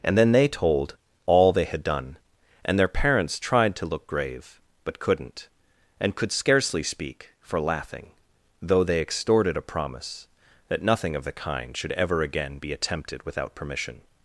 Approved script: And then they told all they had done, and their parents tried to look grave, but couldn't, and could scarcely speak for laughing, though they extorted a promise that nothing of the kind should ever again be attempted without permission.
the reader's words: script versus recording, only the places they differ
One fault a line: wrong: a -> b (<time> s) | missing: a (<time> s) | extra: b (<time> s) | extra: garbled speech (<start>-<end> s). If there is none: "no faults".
no faults